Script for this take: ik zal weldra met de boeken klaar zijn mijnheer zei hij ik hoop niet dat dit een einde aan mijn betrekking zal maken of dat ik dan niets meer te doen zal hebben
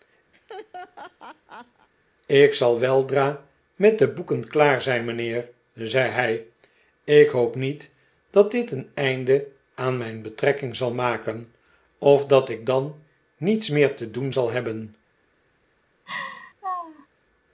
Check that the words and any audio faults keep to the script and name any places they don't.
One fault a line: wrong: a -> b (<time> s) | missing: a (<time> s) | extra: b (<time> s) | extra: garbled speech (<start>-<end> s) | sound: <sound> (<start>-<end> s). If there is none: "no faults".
sound: laugh (0.3-1.9 s)
sound: laugh (16.1-17.1 s)